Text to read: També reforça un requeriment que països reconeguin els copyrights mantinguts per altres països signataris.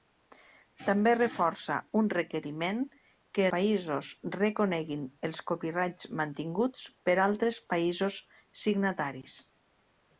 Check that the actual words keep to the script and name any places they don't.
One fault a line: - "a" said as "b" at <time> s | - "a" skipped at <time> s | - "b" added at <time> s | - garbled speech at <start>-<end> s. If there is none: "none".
none